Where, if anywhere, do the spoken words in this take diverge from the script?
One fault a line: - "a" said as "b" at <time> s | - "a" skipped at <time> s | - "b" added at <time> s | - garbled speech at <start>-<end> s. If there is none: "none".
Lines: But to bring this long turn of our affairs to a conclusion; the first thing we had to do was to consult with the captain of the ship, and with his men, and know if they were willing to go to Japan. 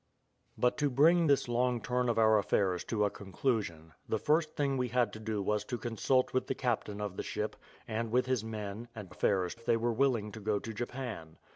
- "know" said as "affairs" at 9.1 s